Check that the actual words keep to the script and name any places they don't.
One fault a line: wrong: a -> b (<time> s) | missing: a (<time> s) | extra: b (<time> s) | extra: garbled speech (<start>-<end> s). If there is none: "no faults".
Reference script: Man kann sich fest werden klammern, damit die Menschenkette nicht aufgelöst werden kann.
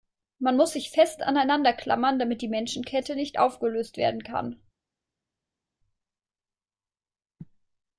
wrong: kann -> muss (0.6 s)
wrong: werden -> aneinander (1.2 s)